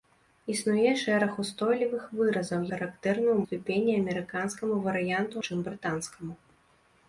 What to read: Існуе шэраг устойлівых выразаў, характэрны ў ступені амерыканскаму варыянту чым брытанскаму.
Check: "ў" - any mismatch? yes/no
no